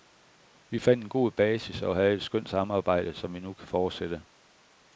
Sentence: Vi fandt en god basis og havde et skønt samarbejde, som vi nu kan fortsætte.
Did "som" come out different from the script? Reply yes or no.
no